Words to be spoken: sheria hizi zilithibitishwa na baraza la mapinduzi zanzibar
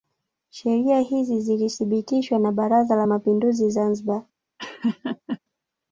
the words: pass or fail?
pass